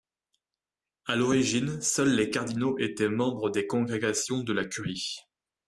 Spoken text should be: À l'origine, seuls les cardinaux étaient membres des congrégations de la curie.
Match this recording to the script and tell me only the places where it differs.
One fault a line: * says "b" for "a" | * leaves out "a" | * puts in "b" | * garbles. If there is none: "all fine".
all fine